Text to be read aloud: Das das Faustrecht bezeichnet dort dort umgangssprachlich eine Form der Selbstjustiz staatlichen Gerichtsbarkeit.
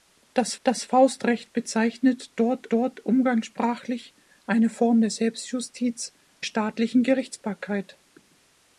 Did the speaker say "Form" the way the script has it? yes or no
yes